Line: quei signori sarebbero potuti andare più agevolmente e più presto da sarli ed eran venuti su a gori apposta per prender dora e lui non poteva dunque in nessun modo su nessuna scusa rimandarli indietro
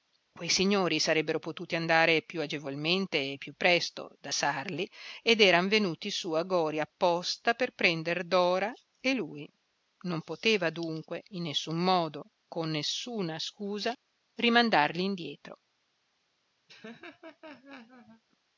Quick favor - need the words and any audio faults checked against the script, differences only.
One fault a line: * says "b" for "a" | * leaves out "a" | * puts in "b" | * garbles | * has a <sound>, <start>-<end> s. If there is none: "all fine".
* says "con" for "su"
* has a laugh, 16.7-18.2 s